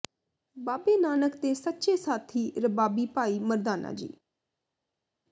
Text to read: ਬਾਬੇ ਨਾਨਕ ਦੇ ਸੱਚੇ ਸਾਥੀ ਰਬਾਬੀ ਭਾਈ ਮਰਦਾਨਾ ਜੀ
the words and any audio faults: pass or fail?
pass